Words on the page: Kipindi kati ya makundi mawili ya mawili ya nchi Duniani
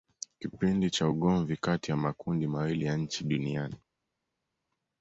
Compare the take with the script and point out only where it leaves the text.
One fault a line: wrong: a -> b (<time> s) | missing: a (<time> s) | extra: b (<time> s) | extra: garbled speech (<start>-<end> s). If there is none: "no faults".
extra: cha ugomvi (0.9 s)
missing: mawili ya (3.0 s)